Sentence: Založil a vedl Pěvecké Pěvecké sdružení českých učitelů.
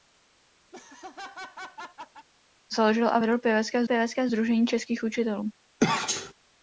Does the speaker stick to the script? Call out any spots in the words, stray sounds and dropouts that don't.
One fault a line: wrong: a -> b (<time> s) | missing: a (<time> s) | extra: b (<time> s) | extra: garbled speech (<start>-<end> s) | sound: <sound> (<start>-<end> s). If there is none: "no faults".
sound: laugh (0.7-2.3 s)
sound: sneeze (5.8-6.3 s)